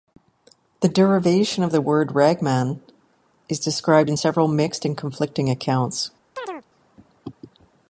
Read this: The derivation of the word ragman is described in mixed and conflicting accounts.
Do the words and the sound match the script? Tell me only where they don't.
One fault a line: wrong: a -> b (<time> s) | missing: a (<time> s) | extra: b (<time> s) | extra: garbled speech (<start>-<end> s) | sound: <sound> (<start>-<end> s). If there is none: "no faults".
extra: several (4.1 s)
sound: chirp (6.4-6.7 s)